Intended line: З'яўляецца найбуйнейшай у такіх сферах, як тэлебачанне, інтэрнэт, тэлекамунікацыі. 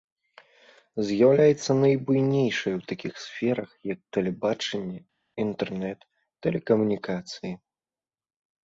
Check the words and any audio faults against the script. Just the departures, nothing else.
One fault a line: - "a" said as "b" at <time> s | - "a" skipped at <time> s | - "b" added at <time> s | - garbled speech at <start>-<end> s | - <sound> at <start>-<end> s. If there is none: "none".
none